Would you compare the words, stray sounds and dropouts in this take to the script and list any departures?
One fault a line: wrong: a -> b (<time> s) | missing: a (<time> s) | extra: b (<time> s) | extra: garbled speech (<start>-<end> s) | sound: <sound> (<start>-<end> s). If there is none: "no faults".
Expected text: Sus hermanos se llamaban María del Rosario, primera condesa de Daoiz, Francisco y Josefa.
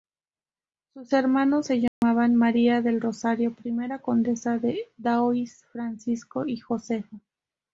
sound: dropout (1.9-2.0 s)